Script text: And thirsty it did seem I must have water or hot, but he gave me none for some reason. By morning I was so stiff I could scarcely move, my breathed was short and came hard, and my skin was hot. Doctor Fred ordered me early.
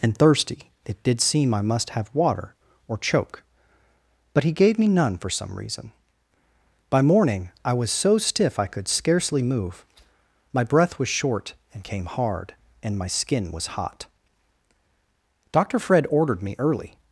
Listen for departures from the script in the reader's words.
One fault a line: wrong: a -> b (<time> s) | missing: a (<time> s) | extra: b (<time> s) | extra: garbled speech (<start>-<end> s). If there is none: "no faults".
wrong: hot -> choke (3.0 s)
wrong: breathed -> breath (10.6 s)